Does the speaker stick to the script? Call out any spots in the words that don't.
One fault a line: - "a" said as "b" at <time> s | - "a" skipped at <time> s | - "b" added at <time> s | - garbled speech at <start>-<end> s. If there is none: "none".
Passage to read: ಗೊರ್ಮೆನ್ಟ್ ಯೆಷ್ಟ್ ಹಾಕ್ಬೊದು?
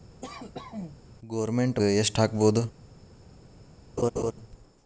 none